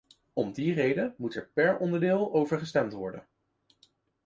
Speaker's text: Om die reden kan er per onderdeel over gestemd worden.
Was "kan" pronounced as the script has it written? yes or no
no